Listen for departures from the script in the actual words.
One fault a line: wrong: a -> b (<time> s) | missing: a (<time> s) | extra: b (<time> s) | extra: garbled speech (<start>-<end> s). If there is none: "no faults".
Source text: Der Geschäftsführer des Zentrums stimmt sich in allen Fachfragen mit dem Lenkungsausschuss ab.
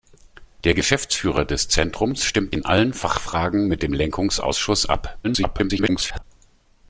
missing: sich (2.5 s)
extra: garbled speech (5.2-6.2 s)